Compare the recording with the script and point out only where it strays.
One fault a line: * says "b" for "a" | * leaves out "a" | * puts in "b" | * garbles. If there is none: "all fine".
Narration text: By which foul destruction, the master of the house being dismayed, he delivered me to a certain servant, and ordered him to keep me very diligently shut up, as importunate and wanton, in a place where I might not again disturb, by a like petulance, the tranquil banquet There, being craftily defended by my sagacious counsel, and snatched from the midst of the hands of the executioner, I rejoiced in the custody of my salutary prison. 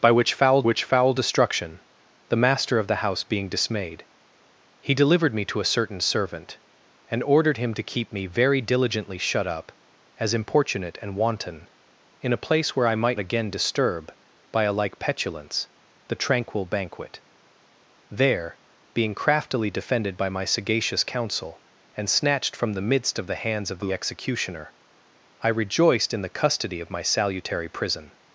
* puts in "which foul"
* leaves out "not"